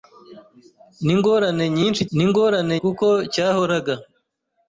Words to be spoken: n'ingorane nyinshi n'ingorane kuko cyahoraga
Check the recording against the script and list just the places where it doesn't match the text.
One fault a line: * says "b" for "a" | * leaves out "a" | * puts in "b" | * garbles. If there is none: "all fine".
all fine